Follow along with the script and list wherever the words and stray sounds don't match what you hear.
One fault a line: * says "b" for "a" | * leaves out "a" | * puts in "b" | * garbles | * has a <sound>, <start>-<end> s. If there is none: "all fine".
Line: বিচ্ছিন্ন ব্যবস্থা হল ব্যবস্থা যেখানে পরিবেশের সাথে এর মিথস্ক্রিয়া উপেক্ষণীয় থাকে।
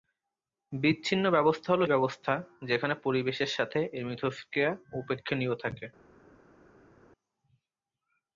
all fine